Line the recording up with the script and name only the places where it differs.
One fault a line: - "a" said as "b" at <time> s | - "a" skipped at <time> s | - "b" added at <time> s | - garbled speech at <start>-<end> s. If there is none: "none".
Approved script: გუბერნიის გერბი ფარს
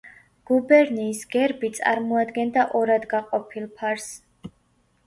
- "წარმოადგენდა ორად გაყოფილ" added at 1.8 s